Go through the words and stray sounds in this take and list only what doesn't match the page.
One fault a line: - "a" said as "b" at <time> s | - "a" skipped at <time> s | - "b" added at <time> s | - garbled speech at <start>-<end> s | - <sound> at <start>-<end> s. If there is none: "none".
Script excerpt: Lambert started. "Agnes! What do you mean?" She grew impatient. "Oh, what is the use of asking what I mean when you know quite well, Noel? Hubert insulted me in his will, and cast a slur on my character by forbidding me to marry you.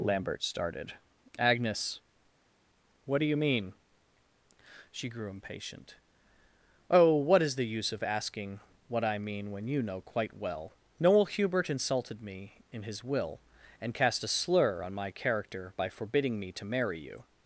none